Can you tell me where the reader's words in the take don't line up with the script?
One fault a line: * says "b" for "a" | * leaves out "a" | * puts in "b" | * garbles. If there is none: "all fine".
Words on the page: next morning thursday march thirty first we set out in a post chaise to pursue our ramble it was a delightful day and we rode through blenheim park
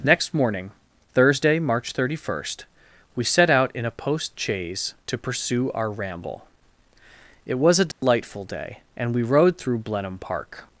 all fine